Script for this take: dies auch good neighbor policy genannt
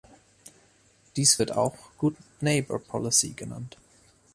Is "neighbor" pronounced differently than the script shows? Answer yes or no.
no